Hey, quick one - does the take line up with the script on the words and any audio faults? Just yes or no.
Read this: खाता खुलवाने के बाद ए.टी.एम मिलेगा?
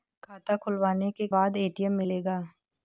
yes